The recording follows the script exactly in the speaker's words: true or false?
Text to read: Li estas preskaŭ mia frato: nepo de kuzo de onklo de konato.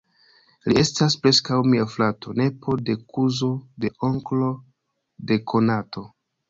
true